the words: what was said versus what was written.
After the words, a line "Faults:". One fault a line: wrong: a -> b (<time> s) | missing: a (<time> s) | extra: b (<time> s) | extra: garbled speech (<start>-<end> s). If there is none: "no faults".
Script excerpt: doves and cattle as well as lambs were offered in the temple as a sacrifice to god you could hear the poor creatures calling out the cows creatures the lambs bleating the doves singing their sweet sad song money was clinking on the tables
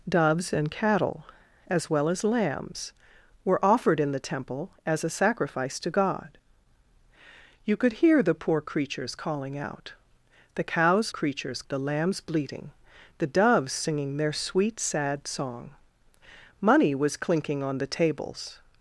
doves and cattle as well as lambs were offered in the temple as a sacrifice to god you could hear the poor creatures calling out the cows creatures the lambs bleating the doves singing their sweet sad song money was clinking on the tables
Faults:
no faults